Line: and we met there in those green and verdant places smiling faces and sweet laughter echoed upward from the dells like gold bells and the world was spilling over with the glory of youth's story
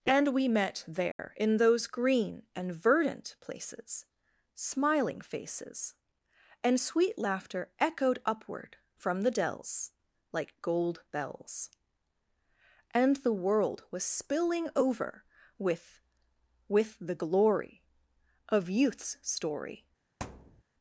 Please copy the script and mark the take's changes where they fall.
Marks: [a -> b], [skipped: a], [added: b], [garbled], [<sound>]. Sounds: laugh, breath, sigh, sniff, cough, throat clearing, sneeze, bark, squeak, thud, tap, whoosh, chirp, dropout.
and we met there [dropout] in those green and verdant places smiling faces and sweet laughter echoed upward from the dells like gold bells and the world was spilling over with [added: with] the glory of youth's story [thud]